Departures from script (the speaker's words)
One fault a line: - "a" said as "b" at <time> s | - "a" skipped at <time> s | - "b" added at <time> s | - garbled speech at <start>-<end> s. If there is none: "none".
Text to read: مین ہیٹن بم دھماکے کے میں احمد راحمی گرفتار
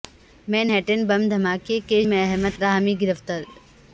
none